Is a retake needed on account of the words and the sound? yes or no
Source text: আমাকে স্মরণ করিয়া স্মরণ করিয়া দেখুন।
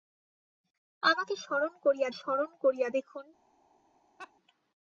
yes